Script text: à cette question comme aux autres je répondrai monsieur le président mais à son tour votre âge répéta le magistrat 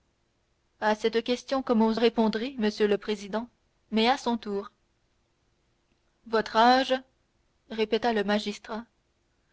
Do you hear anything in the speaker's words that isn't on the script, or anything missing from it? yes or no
yes